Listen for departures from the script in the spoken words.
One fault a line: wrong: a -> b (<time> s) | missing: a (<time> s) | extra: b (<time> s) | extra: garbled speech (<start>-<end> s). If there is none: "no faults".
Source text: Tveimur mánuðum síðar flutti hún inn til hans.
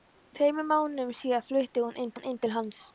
extra: hún inn (2.1 s)